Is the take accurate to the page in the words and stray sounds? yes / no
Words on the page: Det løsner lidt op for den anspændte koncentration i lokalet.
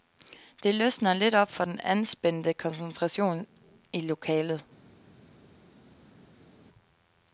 yes